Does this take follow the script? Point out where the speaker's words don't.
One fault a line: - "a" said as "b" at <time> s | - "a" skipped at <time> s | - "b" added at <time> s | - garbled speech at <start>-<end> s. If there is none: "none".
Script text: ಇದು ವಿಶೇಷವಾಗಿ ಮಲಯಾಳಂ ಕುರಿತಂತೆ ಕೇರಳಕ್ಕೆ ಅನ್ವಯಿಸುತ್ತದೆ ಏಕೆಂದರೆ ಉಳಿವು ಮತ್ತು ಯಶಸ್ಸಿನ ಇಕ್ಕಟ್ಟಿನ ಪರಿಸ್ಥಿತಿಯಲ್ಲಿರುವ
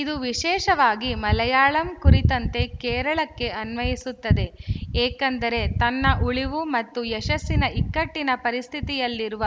- "ತನ್ನ" added at 5.8 s